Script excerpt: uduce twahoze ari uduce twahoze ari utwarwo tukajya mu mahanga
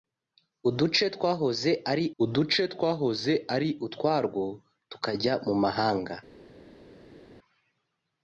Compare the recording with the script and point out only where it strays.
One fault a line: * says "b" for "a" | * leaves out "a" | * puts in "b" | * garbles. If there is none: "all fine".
all fine